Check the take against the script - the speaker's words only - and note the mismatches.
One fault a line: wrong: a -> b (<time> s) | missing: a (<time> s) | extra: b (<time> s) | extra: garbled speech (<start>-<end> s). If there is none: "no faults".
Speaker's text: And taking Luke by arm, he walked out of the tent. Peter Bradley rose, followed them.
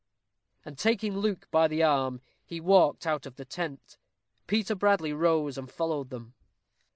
extra: the (1.7 s)
extra: and (5.6 s)